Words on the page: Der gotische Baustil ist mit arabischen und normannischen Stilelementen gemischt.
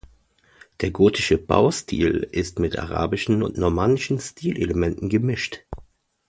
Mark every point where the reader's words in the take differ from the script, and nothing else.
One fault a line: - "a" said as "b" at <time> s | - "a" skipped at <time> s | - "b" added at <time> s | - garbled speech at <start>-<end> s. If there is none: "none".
none